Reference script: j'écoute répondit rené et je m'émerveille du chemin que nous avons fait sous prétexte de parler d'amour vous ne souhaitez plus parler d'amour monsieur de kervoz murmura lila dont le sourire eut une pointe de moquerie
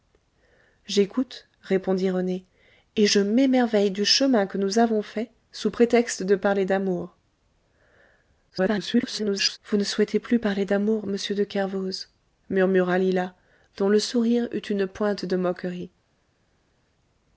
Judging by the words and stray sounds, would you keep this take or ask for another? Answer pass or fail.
fail